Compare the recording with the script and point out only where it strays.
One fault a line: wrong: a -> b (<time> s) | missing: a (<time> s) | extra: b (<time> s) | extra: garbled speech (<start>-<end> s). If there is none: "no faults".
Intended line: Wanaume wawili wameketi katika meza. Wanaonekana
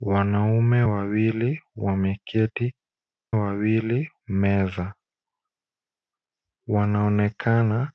wrong: katika -> wawili (3.3 s)